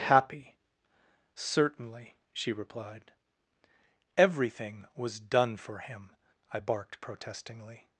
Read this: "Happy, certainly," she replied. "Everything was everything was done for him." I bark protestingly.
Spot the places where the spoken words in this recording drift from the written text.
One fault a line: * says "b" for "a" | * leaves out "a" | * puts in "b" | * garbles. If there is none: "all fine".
* leaves out "everything was"
* says "barked" for "bark"